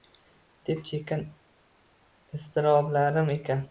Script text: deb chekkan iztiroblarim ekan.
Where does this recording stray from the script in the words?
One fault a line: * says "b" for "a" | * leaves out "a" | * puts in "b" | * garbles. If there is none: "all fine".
all fine